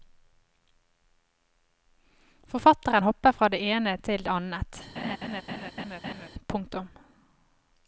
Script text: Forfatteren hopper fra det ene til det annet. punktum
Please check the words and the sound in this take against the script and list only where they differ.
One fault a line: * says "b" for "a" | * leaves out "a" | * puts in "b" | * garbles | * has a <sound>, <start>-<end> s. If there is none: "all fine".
* has a laugh, 5.0-6.3 s